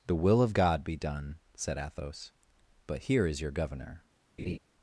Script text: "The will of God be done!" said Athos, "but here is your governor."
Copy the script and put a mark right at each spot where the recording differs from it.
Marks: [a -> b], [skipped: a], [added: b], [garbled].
"The will of God be done!" said Athos, "but here is your governor."